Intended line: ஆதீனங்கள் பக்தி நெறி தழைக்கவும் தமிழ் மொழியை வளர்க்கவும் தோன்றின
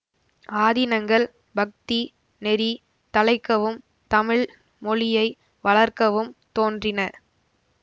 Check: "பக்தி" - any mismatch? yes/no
no